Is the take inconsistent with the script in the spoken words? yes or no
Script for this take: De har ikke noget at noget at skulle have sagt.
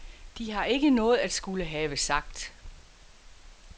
yes